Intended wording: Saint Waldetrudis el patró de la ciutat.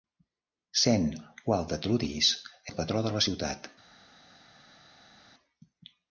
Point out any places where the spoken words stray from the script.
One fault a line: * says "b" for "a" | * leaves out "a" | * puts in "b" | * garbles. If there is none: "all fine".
all fine